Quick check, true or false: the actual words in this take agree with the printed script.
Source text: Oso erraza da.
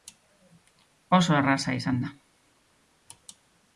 false